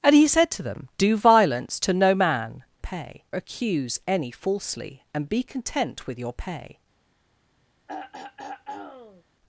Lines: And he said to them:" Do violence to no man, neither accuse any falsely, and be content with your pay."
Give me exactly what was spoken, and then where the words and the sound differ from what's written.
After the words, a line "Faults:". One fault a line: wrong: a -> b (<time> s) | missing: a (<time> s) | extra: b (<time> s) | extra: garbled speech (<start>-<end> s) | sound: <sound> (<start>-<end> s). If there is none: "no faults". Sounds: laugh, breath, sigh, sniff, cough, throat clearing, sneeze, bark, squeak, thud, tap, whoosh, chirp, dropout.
And he said to them:" Do violence to no man, pay accuse any falsely, and be content with your pay."
Faults:
wrong: neither -> pay (2.8 s)
sound: throat clearing (7.9-9.2 s)